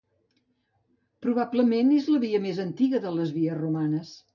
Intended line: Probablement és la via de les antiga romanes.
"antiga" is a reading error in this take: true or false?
true